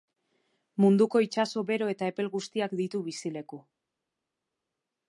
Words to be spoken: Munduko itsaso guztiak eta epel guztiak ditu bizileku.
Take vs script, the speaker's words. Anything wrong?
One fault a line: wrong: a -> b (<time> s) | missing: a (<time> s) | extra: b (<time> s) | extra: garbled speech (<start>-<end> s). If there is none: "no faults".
wrong: guztiak -> bero (1.7 s)